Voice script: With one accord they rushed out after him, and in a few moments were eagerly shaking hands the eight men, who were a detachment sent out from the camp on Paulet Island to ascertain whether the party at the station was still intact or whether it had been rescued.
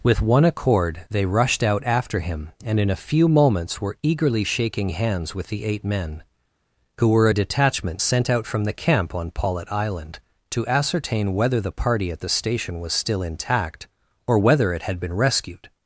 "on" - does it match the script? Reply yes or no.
yes